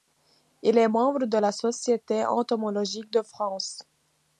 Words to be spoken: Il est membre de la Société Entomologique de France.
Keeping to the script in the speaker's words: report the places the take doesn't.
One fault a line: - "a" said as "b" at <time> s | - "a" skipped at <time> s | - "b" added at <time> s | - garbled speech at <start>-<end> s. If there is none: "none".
none